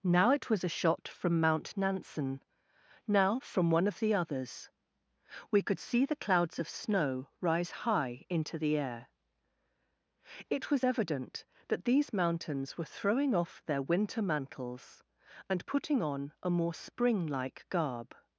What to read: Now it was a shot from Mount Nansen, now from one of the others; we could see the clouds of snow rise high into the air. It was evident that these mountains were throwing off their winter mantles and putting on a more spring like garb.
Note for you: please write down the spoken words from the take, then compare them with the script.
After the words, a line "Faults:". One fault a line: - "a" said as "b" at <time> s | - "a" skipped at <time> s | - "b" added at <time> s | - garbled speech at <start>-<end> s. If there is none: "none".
Now it was a shot from Mount Nansen, now from one of the others; we could see the clouds of snow rise high into the air. It was evident that these mountains were throwing off their winter mantles and putting on a more spring like garb.
Faults:
none